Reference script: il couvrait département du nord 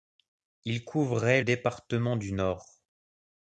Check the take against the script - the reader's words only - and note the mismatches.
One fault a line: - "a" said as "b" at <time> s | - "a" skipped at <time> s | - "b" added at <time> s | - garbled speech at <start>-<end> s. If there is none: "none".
none